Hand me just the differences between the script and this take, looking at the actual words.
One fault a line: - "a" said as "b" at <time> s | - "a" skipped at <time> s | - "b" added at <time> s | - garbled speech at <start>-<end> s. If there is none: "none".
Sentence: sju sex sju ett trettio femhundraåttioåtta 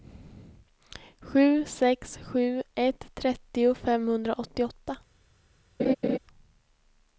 none